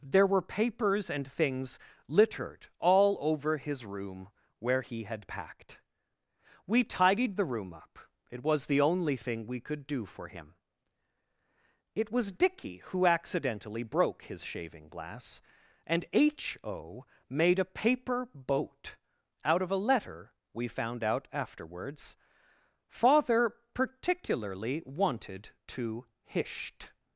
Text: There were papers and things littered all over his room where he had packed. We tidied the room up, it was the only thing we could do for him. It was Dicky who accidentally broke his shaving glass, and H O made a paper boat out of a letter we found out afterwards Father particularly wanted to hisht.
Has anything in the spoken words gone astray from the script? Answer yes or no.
no